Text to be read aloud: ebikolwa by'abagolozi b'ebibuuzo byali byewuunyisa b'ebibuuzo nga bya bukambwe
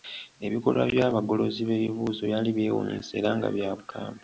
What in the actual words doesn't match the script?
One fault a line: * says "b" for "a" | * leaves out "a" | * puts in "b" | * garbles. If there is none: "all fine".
* says "era" for "b'ebibuuzo"